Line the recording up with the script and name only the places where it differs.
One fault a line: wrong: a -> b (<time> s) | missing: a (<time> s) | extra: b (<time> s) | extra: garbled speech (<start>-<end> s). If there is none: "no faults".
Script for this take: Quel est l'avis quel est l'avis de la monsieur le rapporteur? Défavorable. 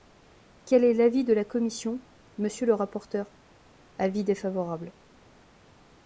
missing: quel est l'avis (1.2 s)
extra: commission (1.4 s)
extra: Avis (4.0 s)